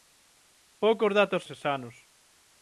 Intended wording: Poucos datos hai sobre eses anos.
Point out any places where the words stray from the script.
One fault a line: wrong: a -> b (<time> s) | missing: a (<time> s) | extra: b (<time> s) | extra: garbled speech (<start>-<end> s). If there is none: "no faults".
missing: hai sobre (1.4 s)